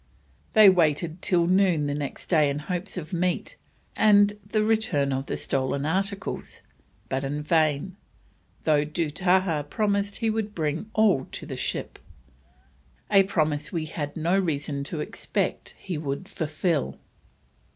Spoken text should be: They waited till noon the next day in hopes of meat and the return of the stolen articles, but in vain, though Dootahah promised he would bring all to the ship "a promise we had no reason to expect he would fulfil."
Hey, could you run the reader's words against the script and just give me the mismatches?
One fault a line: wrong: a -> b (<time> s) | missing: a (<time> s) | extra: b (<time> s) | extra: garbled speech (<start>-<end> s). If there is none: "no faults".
no faults